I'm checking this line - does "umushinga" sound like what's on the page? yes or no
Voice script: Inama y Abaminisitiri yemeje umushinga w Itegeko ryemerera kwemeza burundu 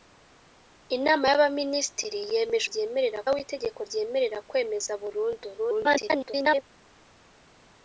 no